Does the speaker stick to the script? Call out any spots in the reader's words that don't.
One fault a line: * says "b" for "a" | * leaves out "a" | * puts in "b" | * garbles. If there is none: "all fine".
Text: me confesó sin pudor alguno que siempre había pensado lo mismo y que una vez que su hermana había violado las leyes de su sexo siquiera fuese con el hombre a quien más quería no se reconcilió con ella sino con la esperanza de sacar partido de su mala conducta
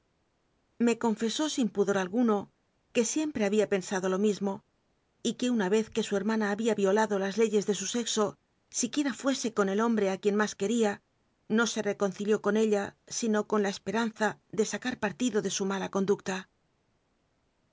all fine